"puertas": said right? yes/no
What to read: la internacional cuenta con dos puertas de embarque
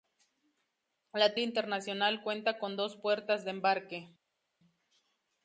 yes